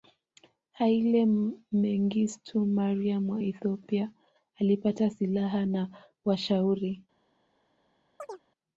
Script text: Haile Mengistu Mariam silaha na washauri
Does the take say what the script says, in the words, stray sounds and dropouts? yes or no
no